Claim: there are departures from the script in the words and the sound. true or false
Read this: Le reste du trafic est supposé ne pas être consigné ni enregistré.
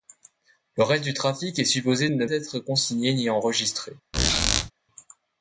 true